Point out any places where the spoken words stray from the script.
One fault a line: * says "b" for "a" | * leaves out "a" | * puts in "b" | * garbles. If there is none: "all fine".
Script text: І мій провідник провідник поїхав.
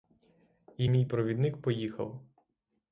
* leaves out "провідник"